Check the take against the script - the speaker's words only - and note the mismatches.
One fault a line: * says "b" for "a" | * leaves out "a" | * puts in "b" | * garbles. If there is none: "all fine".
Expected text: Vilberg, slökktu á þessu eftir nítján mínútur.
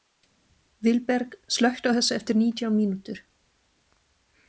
all fine